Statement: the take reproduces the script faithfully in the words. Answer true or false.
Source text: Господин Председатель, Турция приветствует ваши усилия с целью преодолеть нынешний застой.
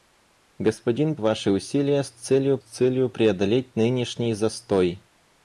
false